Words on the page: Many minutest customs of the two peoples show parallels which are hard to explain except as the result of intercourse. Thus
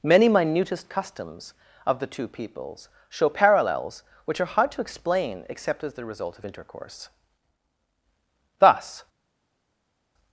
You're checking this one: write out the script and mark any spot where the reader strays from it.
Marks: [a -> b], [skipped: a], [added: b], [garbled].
Many minutest customs of the two peoples show parallels which are hard to explain except as the result of intercourse. Thus